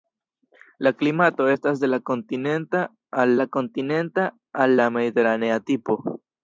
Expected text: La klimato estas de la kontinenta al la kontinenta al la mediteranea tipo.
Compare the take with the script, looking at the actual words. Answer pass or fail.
pass